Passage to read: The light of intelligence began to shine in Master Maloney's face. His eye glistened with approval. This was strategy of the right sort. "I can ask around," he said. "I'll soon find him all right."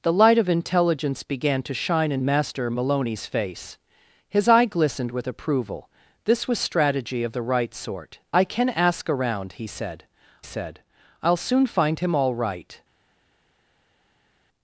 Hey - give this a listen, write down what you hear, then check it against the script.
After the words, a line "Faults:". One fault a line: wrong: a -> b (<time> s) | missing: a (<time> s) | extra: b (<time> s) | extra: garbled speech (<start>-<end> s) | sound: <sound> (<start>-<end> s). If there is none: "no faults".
The light of intelligence began to shine in Master Maloney's face. His eye glistened with approval. This was strategy of the right sort. "I can ask around," he said said. "I'll soon find him all right."
Faults:
extra: said (10.4 s)